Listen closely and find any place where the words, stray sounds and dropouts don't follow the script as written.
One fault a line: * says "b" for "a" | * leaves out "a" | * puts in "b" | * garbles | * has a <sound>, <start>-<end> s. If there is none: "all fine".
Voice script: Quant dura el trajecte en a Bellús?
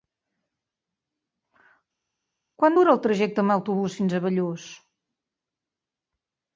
* puts in "autobús fins"